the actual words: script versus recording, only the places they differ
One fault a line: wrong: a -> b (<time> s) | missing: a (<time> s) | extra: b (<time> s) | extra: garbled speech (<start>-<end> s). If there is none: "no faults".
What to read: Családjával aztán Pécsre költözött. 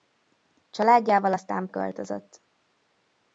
missing: Pécsre (1.7 s)